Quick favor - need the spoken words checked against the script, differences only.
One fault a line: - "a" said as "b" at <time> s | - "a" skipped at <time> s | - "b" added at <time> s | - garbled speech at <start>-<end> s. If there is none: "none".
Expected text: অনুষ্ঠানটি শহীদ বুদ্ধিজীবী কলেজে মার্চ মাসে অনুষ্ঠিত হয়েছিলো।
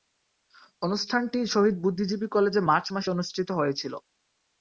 none